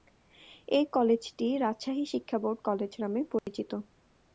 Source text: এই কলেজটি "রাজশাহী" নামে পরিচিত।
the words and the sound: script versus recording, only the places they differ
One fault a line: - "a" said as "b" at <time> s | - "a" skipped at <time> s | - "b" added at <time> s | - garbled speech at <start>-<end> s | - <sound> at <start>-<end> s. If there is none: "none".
- "শিক্ষা বোর্ড কলেজ" added at 2.1 s
- dropout at 3.4-3.5 s